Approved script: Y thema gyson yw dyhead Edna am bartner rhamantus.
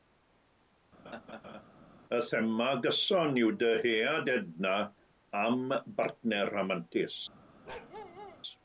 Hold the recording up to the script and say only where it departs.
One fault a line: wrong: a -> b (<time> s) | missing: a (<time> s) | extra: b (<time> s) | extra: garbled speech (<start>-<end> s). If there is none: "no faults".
no faults